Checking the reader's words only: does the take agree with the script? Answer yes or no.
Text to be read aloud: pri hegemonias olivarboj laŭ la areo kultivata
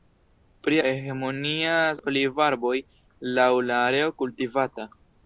yes